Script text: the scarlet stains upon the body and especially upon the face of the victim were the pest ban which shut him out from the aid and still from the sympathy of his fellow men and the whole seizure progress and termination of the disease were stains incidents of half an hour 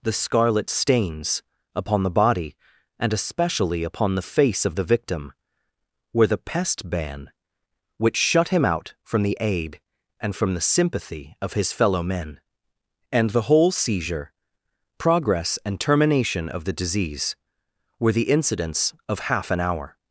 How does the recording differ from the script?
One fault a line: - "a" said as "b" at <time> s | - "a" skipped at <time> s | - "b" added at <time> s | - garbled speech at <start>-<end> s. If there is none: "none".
- "still" skipped at 10.3 s
- "stains" said as "the" at 18.1 s